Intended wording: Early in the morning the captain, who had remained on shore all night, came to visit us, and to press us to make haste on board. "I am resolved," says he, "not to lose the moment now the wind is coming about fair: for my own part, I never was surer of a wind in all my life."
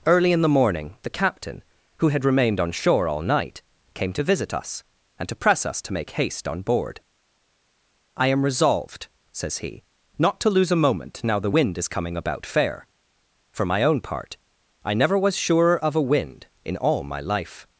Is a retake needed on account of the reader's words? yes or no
yes